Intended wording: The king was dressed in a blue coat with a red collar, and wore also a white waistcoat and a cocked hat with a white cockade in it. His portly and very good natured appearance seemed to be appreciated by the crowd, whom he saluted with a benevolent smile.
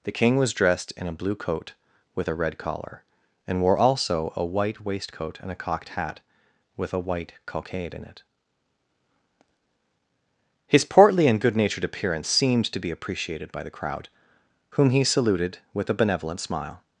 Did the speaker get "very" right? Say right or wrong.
wrong